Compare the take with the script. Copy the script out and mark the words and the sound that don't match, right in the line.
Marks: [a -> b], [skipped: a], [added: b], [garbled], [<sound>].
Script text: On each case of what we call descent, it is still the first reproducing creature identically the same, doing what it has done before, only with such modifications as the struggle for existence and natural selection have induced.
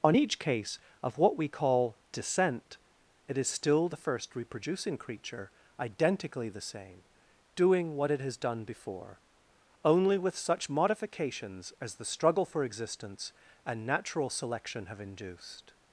On each case of what we call descent, it is still the first reproducing creature identically the same, doing what it has done before, only with such modifications as the struggle for existence and natural selection have induced.